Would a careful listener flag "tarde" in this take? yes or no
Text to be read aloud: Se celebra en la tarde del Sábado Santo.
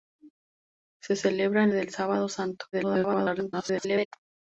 yes